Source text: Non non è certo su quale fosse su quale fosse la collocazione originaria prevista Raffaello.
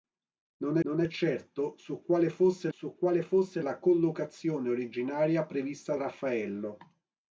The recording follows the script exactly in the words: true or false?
true